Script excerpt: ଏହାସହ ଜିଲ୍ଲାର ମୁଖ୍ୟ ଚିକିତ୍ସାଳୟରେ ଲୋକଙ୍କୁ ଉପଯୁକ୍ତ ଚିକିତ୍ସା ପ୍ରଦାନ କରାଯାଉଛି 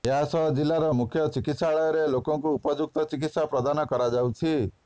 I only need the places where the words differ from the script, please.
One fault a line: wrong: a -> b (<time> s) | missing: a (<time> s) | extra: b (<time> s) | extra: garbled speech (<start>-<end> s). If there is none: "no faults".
no faults